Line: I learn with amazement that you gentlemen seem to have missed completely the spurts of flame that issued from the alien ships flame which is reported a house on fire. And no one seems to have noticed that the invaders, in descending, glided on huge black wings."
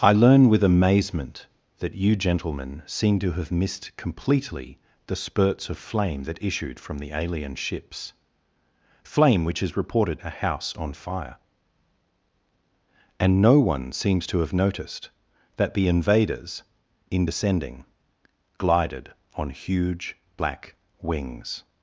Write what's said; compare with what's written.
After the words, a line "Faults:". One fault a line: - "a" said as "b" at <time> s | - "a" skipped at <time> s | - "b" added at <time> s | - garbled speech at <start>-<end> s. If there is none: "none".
I learn with amazement that you gentlemen seem to have missed completely the spurts of flame that issued from the alien ships flame which is reported a house on fire. And no one seems to have noticed that the invaders, in descending, glided on huge black wings."
Faults:
none